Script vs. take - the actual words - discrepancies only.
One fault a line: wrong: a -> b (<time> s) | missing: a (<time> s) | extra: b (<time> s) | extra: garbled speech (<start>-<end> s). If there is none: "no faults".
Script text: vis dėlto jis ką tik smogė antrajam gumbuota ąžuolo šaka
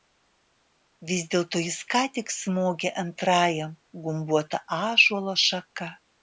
no faults